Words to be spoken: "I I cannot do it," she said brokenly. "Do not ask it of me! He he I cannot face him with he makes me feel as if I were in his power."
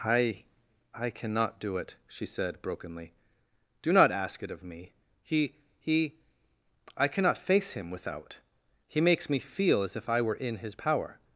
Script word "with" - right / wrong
wrong